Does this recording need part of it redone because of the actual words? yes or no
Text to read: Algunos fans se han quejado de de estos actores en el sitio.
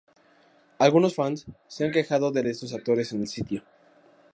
no